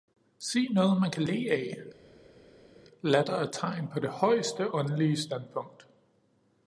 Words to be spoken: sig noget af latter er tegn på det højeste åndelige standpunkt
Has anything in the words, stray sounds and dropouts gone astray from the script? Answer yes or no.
yes